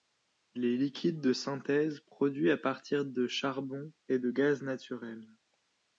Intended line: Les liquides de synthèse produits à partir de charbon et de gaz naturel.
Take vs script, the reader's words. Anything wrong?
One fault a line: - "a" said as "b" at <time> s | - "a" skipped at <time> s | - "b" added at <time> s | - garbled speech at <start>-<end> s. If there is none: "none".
none